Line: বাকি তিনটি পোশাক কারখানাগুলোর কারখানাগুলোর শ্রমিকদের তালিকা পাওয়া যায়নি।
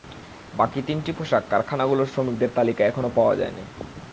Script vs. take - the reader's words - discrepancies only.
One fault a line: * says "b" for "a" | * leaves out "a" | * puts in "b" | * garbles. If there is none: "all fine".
* leaves out "কারখানাগুলোর"
* puts in "এখনো"